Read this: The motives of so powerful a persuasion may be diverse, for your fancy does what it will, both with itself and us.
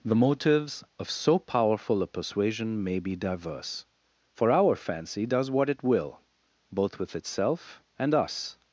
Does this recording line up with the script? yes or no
no